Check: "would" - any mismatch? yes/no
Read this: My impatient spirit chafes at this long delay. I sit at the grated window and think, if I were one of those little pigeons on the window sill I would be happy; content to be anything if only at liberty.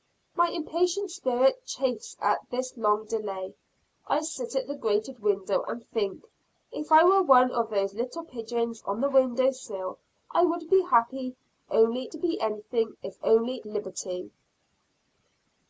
no